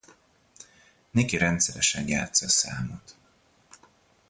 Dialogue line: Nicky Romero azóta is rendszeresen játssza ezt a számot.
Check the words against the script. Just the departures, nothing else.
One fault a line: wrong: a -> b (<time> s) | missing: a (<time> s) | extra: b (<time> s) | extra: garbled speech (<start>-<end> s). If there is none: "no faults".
missing: Romero azóta is (1.4 s)
missing: ezt (2.5 s)